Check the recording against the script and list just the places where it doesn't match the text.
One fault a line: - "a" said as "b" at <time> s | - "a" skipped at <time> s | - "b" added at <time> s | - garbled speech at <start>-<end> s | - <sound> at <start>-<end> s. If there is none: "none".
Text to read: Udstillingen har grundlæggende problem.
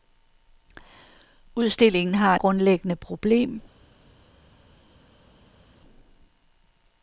none